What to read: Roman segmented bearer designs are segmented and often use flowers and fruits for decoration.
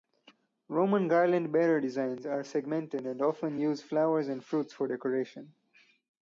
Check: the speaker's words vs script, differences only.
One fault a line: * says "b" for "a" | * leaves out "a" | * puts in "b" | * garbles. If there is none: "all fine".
* says "garland" for "segmented"